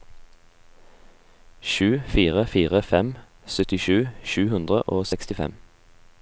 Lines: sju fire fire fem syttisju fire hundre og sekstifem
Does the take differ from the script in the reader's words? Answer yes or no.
yes